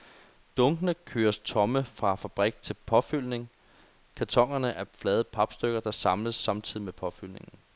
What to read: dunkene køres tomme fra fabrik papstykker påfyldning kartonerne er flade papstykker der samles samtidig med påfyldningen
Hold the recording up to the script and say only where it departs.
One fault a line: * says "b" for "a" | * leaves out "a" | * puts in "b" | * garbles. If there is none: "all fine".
* says "til" for "papstykker"